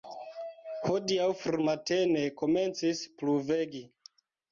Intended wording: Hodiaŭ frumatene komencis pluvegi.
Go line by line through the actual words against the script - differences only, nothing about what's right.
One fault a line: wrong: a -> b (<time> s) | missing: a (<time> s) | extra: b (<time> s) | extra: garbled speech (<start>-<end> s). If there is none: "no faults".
no faults